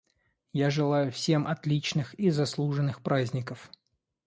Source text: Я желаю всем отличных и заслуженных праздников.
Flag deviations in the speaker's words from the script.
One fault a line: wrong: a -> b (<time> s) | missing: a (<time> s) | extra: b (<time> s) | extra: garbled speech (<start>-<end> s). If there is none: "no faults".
no faults